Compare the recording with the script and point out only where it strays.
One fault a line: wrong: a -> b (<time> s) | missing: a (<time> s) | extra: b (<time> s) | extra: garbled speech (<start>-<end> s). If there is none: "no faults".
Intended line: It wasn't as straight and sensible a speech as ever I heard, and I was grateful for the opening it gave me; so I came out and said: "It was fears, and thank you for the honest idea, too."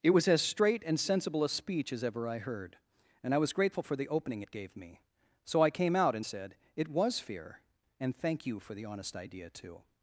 wrong: wasn't -> was (0.1 s)
wrong: fears -> fear (7.2 s)